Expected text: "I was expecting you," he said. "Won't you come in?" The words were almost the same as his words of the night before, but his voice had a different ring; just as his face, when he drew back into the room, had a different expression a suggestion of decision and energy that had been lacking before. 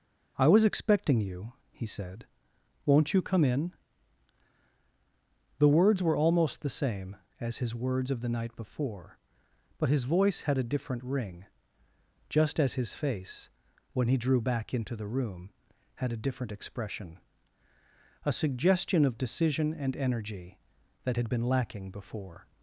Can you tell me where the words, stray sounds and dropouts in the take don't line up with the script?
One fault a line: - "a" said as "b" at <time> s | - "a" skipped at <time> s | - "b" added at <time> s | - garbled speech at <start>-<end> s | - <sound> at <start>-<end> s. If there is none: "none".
none